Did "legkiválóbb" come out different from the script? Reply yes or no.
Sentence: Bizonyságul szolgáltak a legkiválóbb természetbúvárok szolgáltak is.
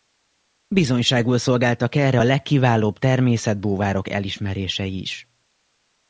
no